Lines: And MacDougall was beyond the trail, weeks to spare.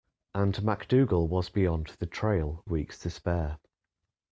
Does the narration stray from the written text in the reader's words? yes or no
no